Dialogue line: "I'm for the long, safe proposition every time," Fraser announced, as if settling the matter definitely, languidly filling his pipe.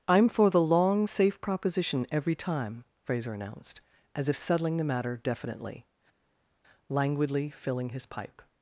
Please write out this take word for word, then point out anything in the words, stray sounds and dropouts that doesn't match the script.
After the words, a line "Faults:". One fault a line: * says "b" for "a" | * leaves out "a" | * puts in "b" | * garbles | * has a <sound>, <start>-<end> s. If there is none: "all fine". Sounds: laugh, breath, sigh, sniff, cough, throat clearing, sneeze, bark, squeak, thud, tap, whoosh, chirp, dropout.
"I'm for the long, safe proposition every time," Fraser announced, as if settling the matter definitely, languidly filling his pipe.
Faults:
all fine